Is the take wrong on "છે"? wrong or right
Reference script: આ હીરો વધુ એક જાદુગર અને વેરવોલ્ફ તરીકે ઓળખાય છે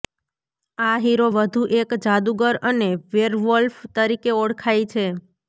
right